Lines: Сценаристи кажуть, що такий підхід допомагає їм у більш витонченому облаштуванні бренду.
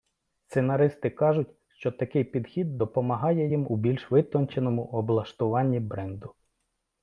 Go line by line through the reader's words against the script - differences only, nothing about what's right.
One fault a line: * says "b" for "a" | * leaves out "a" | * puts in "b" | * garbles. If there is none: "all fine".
all fine